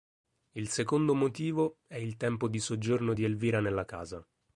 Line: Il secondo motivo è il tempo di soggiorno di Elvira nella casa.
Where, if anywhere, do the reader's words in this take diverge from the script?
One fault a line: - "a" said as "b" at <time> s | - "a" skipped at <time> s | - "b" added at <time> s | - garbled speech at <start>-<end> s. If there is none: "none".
none